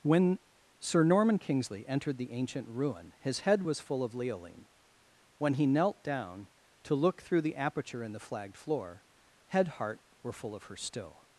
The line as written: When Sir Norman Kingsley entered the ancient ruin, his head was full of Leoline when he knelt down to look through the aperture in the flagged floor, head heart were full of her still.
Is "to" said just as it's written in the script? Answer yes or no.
yes